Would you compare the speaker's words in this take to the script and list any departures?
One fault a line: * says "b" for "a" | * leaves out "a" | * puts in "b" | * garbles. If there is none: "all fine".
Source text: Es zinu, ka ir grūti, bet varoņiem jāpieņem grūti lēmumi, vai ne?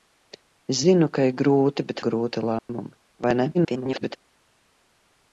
* leaves out "varoņiem jāpieņem"
* garbles